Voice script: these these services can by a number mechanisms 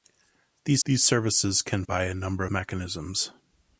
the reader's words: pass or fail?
pass